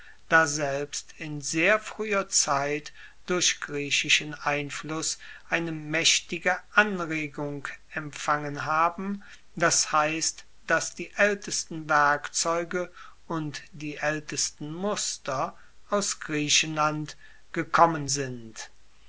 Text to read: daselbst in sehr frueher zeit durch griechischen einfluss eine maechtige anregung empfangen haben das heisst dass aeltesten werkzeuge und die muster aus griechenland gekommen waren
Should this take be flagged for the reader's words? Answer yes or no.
yes